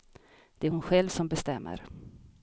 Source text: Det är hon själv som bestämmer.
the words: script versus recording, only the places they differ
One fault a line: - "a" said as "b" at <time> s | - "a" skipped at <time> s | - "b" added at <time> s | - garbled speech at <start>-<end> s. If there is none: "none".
none